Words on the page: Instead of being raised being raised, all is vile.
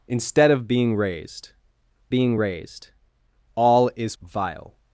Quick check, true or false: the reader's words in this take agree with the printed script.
true